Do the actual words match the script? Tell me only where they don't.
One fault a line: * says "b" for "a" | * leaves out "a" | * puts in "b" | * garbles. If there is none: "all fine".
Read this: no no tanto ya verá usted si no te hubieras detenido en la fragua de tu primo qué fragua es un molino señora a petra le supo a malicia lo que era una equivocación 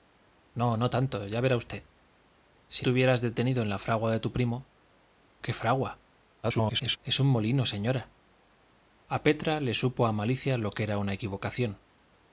* leaves out "no"
* garbles